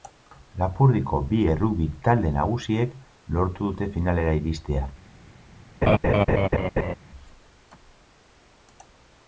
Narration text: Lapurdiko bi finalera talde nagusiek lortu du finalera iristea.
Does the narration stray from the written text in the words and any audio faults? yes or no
yes